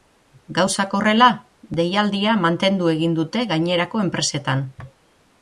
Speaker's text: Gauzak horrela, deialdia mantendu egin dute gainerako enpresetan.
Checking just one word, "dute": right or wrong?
right